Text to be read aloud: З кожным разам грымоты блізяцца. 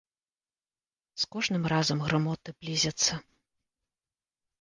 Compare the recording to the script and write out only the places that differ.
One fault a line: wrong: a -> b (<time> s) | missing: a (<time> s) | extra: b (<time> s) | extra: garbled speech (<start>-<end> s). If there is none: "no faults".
no faults